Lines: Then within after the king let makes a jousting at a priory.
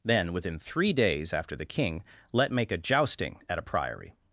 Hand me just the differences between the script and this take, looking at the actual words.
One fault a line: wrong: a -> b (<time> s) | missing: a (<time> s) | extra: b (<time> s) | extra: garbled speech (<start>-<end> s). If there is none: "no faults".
extra: three days (0.6 s)
wrong: makes -> make (2.5 s)